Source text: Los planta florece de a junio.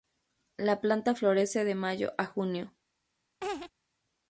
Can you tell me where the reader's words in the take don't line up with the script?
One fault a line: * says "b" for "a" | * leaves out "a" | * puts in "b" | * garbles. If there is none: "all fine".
* says "La" for "Los"
* puts in "mayo"